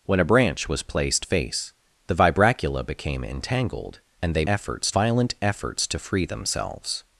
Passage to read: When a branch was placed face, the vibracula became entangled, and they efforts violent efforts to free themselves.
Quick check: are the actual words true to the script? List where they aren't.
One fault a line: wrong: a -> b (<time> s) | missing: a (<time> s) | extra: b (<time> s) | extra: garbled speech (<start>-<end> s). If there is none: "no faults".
no faults